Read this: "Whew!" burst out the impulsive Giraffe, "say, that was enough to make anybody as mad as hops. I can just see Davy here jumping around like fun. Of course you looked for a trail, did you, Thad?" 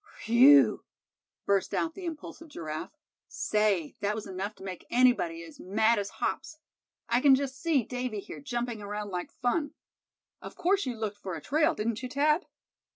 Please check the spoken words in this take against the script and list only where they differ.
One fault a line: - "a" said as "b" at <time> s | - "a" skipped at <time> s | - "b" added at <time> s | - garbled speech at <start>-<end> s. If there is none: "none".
- "did" said as "didn't" at 11.8 s